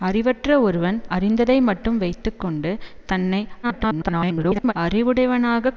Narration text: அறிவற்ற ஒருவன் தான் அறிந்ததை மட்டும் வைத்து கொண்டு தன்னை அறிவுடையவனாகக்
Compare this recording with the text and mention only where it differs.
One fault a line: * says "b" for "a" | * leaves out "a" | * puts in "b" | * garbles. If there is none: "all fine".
* leaves out "தான்"
* garbles